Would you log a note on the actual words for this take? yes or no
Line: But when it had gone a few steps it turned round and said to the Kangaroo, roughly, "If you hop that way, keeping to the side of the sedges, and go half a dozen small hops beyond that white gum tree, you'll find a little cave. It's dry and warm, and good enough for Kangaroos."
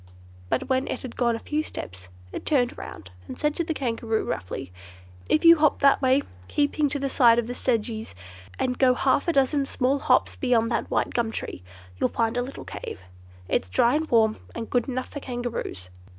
no